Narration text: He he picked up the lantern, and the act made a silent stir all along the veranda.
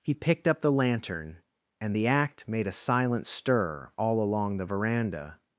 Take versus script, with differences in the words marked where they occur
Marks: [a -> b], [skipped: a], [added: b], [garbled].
He [skipped: he] picked up the lantern, and the act made a silent stir all along the veranda.